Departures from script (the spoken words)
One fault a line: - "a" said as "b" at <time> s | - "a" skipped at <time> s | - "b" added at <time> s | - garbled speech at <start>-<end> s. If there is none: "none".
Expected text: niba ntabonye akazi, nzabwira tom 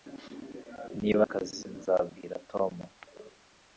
- "ntabonye" skipped at 1.2 s